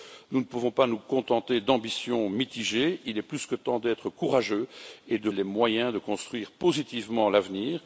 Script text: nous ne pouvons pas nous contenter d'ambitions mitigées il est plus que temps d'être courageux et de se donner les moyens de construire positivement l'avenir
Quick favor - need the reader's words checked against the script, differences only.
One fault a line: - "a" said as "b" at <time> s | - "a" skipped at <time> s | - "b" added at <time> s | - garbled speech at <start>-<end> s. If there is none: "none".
- "se donner" skipped at 5.3 s